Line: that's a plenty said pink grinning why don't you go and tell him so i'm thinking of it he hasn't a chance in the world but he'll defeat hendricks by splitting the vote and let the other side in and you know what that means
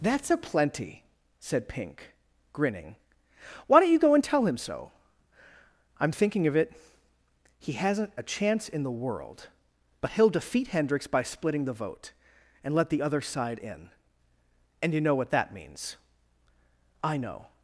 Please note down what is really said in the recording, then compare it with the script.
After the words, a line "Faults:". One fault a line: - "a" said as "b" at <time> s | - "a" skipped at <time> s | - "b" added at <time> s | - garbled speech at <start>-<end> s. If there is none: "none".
that's a plenty said pink grinning why don't you go and tell him so i'm thinking of it he hasn't a chance in the world but he'll defeat hendricks by splitting the vote and let the other side in and you know what that means i know
Faults:
- "i know" added at 17.0 s